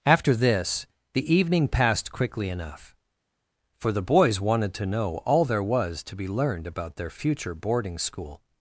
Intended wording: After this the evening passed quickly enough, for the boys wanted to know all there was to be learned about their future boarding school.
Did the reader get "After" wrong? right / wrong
right